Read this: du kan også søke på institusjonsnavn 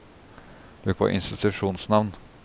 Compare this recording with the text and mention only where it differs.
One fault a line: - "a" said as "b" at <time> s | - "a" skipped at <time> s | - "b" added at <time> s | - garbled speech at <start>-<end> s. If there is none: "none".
- "kan også søke" skipped at 0.9 s